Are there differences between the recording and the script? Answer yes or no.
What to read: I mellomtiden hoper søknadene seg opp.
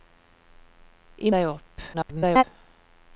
yes